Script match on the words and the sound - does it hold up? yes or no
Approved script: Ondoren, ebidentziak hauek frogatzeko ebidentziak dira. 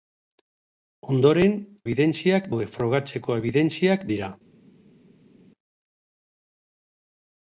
yes